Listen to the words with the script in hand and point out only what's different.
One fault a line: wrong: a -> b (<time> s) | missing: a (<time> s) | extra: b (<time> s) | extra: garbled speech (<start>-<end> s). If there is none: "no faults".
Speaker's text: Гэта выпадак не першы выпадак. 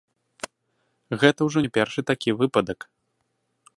wrong: выпадак -> ўжо (1.5 s)
extra: такі (2.1 s)